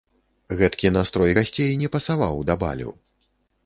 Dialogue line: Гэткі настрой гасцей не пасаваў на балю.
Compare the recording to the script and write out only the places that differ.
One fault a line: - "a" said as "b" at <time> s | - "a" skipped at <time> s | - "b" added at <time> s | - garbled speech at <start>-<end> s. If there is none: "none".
- "на" said as "да" at 2.5 s